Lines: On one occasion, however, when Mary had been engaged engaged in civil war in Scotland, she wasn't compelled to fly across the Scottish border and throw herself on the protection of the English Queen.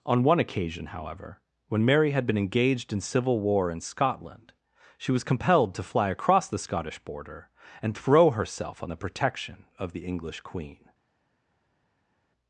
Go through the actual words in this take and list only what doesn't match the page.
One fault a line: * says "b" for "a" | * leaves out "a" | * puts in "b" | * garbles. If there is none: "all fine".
* leaves out "engaged"
* says "was" for "wasn't"